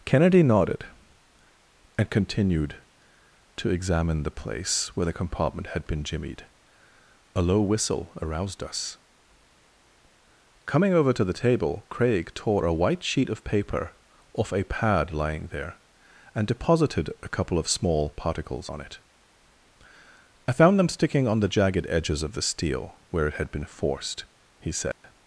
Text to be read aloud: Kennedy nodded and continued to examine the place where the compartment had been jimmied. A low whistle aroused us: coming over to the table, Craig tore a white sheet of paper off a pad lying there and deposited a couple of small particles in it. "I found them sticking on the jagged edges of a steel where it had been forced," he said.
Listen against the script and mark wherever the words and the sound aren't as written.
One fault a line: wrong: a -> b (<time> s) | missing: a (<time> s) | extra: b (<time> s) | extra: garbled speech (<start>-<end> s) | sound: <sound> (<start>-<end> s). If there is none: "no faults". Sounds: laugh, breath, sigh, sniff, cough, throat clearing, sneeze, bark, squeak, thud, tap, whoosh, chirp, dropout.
wrong: in -> on (18.7 s)
wrong: a -> the (22.3 s)
sound: dropout (24.9-25.0 s)